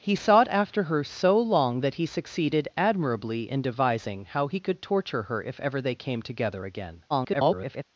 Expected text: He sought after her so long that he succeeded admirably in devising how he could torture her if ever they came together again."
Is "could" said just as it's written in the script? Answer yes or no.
yes